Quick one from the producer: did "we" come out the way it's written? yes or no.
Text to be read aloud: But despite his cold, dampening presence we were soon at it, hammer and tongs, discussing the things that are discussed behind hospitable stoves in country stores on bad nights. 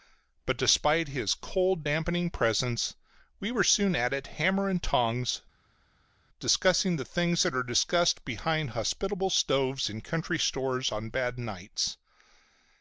yes